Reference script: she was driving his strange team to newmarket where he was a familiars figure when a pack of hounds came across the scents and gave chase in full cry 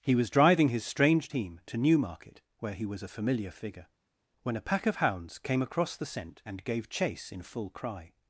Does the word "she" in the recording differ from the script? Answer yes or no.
yes